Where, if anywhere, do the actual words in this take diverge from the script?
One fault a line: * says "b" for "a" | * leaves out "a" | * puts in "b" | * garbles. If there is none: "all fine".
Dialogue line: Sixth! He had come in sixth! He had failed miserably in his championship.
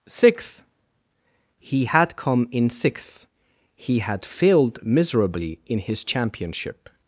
all fine